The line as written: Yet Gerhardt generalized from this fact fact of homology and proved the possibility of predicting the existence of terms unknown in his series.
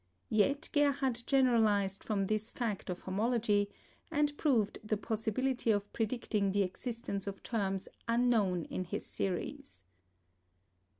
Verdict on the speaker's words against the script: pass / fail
fail